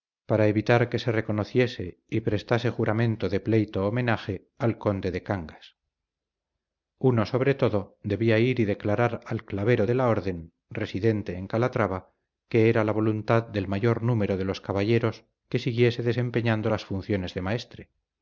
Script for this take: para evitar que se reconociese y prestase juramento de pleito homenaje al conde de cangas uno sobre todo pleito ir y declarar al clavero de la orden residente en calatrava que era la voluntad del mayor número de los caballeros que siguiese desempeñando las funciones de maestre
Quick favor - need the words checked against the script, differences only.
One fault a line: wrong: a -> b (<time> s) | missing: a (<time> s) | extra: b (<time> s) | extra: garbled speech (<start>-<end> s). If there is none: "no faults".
wrong: pleito -> debía (8.0 s)